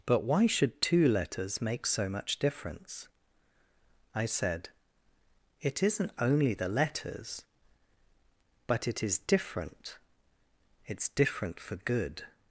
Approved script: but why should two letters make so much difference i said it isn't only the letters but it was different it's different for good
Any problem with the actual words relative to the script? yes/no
yes